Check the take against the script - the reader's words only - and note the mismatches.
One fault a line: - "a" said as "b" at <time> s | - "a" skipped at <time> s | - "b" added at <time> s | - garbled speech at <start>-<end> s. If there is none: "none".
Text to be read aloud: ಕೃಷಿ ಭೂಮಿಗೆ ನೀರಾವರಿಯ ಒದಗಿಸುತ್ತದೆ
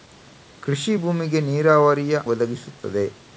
none